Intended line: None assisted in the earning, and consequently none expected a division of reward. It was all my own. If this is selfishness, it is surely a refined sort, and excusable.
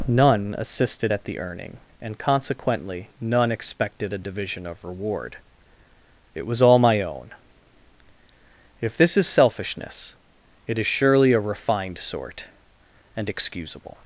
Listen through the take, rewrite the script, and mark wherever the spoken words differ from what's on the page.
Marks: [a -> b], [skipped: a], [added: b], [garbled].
None assisted [in -> at] the earning, and consequently none expected a division of reward. It was all my own. If this is selfishness, it is surely a refined sort, and excusable.